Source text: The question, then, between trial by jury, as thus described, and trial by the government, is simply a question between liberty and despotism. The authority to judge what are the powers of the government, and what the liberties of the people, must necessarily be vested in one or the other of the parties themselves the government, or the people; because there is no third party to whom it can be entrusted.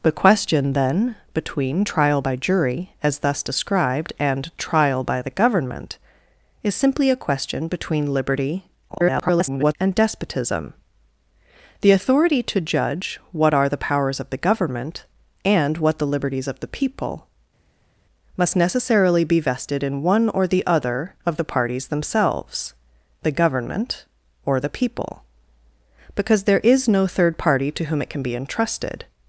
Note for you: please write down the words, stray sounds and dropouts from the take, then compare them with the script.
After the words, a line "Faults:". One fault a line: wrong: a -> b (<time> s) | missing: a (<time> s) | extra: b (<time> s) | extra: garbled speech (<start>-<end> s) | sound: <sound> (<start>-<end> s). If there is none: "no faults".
The question, then, between trial by jury, as thus described, and trial by the government, is simply a question between liberty [garbled] and despotism. The authority to judge what are the powers of the government, and what the liberties of the people, must necessarily be vested in one or the other of the parties themselves the government, or the people; because there is no third party to whom it can be entrusted.
Faults:
extra: garbled speech (8.9-9.8 s)